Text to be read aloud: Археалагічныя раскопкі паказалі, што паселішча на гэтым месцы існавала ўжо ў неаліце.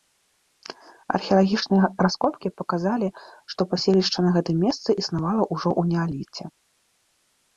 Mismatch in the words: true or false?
false